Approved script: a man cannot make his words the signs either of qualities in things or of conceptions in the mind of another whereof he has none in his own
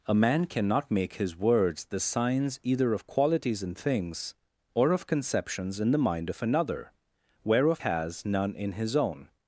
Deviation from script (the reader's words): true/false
true